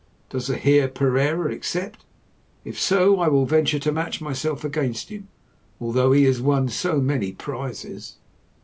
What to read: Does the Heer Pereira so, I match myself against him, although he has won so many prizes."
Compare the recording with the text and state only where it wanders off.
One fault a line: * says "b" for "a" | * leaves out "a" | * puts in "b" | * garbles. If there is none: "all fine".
* puts in "accept If"
* puts in "will venture to"